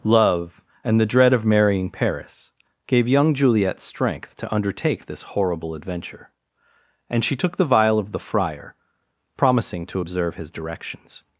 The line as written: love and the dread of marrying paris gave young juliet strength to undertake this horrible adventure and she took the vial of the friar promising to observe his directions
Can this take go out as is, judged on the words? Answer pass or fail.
pass